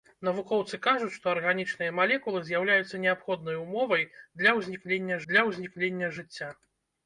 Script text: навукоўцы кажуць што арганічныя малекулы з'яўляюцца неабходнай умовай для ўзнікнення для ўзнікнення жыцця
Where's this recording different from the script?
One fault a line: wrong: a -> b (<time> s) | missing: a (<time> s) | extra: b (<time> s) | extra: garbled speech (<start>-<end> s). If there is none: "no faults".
no faults